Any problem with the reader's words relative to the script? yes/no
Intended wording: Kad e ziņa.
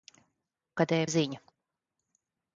no